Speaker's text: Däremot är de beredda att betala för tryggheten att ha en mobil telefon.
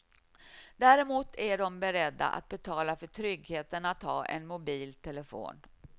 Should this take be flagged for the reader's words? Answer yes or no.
no